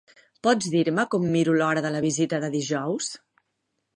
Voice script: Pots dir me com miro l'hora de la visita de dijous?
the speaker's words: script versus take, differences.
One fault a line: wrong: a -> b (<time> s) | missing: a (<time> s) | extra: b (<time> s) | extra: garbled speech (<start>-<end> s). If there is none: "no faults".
no faults